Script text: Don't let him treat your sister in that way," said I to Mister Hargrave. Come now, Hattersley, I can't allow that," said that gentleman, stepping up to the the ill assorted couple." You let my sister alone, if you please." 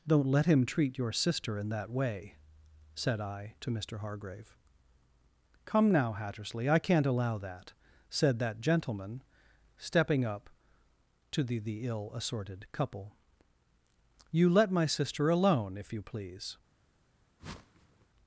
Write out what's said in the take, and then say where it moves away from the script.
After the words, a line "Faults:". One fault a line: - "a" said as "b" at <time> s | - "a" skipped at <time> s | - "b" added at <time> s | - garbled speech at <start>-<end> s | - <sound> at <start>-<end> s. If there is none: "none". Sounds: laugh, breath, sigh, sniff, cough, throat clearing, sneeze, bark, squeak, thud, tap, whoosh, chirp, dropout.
Don't let him treat your sister in that way," said I to Mister Hargrave. Come now, Hattersley, I can't allow that," said that gentleman, stepping up to the the ill assorted couple." You let my sister alone, if you please."
Faults:
- whoosh at 17.4-18.1 s